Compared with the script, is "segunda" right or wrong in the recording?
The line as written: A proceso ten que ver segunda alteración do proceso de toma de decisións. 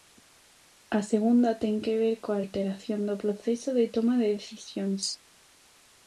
wrong